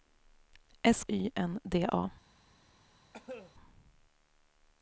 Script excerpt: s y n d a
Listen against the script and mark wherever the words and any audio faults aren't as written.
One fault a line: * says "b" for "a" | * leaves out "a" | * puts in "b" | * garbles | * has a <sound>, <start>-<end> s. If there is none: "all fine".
* has a cough, 3.1-3.5 s